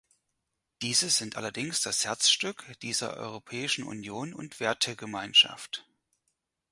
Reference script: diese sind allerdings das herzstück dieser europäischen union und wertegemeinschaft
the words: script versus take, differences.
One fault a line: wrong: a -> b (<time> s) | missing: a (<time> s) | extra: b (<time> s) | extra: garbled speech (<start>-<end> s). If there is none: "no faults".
no faults